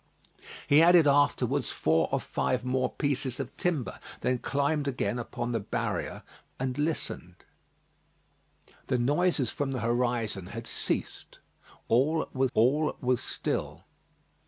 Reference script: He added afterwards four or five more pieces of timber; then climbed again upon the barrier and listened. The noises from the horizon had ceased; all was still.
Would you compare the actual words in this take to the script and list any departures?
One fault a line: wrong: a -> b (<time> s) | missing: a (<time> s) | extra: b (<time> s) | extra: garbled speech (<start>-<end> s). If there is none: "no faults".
extra: all was (12.5 s)